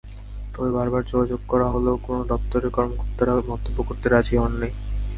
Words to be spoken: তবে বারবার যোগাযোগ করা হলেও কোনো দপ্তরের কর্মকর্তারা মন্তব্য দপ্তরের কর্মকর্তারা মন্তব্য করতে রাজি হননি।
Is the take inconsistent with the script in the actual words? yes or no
yes